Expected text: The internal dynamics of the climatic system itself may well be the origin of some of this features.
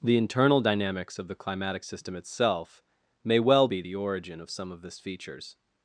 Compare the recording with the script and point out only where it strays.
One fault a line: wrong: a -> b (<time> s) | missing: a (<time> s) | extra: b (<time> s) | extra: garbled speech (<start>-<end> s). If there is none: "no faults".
no faults